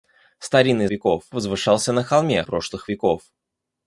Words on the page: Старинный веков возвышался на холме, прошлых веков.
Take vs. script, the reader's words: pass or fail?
pass